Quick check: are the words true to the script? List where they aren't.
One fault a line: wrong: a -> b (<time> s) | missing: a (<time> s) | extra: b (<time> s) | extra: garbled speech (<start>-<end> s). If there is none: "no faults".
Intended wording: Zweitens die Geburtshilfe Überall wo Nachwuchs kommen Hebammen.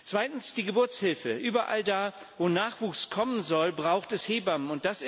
extra: da (1.8 s)
extra: soll braucht es (3.4 s)